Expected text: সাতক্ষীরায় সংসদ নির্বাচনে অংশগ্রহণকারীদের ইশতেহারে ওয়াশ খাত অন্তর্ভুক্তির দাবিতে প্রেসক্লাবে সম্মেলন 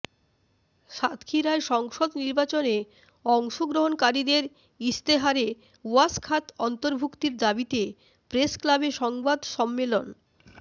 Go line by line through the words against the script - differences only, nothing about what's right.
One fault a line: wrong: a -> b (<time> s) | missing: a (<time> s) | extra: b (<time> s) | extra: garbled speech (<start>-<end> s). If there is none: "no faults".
extra: সংবাদ (8.9 s)